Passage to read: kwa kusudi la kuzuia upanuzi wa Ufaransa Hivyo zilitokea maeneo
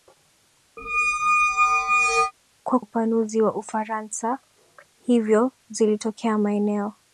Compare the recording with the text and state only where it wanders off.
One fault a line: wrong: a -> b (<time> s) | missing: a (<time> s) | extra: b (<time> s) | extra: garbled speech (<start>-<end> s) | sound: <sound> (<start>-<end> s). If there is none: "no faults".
sound: squeak (0.8-2.3 s)
missing: kusudi la kuzuia (2.8 s)